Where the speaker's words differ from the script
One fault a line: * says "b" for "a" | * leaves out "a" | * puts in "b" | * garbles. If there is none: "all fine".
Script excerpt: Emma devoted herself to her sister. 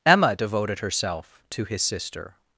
* says "his" for "her"